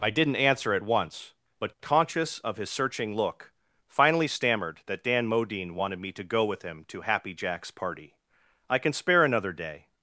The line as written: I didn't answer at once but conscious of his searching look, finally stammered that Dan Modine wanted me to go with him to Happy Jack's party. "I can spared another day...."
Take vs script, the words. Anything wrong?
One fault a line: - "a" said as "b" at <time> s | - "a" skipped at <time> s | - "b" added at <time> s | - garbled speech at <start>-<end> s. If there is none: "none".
- "spared" said as "spare" at 8.9 s